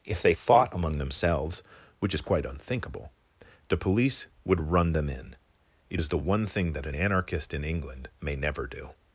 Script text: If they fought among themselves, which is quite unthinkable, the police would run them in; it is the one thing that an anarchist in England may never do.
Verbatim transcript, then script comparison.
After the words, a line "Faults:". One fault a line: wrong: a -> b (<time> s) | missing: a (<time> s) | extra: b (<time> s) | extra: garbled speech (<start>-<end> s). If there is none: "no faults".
If they fought among themselves, which is quite unthinkable, the police would run them in; it is the one thing that an anarchist in England may never do.
Faults:
no faults